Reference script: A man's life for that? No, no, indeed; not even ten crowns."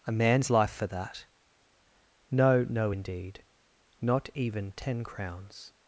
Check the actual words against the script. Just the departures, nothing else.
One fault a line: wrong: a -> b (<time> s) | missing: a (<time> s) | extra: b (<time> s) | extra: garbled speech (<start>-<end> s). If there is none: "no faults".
no faults